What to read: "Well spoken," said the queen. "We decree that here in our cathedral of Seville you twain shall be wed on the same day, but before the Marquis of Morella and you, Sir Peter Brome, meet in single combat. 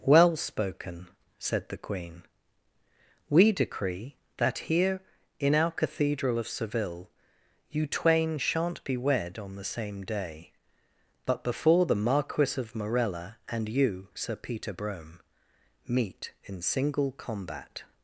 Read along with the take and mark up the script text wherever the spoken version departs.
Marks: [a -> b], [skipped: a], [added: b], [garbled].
"Well spoken," said the queen. "We decree that here in our cathedral of Seville you twain [shall -> shan't] be wed on the same day, but before the Marquis of Morella and you, Sir Peter Brome, meet in single combat.